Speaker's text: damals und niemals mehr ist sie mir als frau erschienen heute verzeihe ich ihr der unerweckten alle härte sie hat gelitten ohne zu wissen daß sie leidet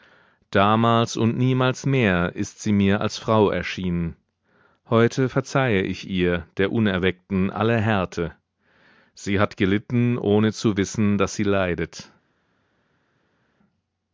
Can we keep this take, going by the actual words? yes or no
yes